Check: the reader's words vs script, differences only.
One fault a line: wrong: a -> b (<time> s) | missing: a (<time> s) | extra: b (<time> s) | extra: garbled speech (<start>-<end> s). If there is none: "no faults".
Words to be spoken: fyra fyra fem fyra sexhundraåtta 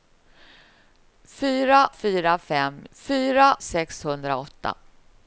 no faults